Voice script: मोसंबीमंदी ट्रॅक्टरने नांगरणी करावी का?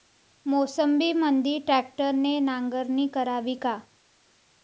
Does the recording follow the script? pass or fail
pass